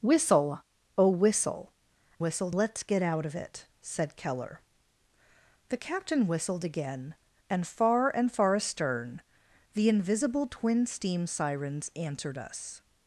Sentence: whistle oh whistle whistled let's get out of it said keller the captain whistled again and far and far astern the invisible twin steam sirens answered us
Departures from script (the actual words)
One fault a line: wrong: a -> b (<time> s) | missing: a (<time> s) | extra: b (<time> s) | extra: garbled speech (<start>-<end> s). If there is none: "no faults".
no faults